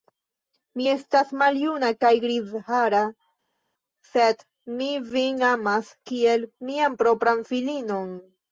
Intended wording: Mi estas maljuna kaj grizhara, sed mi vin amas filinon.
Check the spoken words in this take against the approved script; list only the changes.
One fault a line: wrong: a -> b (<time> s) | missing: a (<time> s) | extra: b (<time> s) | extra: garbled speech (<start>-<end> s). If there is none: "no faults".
extra: kiel mian propran (6.1 s)